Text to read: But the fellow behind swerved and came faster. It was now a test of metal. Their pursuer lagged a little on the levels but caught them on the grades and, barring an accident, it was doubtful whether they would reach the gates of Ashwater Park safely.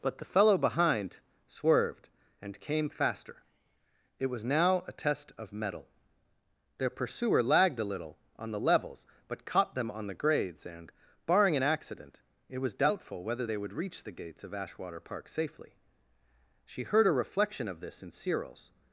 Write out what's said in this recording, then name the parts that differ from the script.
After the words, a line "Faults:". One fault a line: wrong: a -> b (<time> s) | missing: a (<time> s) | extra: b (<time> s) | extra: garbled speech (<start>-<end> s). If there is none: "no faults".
But the fellow behind swerved and came faster. It was now a test of metal. Their pursuer lagged a little on the levels but caught them on the grades and, barring an accident, it was doubtful whether they would reach the gates of Ashwater Park safely. She heard a reflection of this in Cyril's
Faults:
extra: She heard a reflection of this in Cyril's (16.6 s)